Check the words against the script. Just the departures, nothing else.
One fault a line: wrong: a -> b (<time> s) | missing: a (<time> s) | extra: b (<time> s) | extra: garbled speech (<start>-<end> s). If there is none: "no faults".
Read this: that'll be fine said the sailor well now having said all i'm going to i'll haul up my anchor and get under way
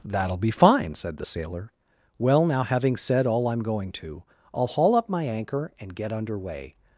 no faults